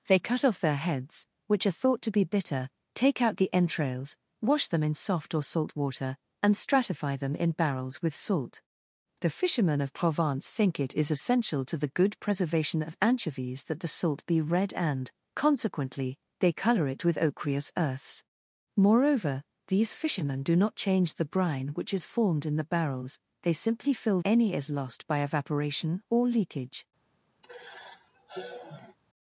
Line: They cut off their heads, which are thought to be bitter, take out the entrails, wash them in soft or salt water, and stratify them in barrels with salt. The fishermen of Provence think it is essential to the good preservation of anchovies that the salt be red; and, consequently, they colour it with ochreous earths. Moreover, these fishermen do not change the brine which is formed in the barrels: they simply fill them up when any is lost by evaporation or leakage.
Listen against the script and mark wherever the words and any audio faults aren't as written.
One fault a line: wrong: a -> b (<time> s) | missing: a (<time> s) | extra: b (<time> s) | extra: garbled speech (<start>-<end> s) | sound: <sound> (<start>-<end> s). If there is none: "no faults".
missing: them up when (24.2 s)
sound: sigh (27.4-29.0 s)